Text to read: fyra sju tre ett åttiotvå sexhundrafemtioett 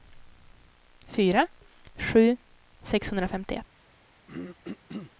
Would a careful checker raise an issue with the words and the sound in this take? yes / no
yes